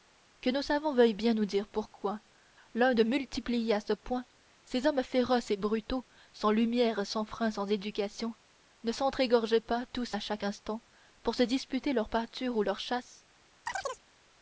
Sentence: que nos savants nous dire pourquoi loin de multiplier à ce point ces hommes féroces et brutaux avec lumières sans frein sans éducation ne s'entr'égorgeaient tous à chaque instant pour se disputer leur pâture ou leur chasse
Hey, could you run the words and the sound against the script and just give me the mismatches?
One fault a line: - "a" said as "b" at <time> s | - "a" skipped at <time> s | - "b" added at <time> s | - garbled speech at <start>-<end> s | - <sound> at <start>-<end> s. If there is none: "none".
- "veuillent bien" added at 0.9 s
- "avec" said as "sans" at 6.3 s
- "pas" added at 9.6 s
- chirp at 13.7-14.0 s